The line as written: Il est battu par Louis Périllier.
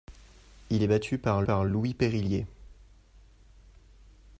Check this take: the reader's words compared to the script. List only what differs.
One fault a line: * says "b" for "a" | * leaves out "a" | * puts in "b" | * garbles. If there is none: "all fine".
* puts in "par"